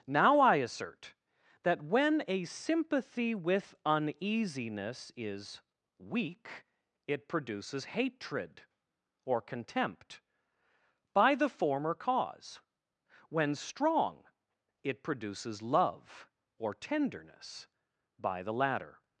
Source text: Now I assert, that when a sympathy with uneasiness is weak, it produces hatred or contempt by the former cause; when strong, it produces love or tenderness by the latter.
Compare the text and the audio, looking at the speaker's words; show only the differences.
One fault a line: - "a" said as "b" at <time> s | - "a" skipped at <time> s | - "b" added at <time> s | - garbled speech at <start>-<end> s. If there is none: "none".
none